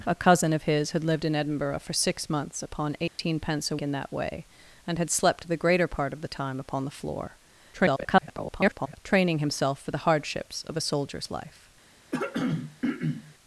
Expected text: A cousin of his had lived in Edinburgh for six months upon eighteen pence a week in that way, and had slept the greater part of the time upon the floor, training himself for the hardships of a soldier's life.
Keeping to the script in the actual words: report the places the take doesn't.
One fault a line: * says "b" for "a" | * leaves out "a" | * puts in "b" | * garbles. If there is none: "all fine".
* leaves out "week"
* garbles